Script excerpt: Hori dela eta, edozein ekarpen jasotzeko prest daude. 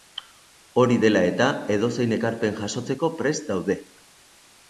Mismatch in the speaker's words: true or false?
false